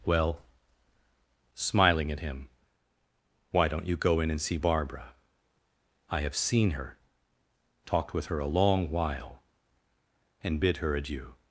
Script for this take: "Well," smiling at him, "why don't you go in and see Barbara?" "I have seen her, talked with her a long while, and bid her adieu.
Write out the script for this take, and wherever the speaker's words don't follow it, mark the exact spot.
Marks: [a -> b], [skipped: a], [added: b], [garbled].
"Well," smiling at him, "why don't you go in and see Barbara?" "I have seen her, talked with her a long while, and bid her adieu.